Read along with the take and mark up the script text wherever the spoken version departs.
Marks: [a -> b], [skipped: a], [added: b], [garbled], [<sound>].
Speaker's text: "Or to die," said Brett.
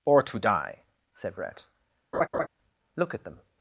"Or to die," said Brett. [laugh] [added: Look at them]